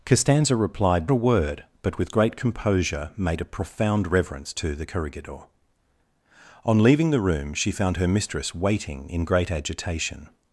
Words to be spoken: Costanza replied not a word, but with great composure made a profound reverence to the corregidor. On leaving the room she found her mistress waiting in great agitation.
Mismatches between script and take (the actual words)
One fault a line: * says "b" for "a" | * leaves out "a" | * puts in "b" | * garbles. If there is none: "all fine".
* leaves out "not"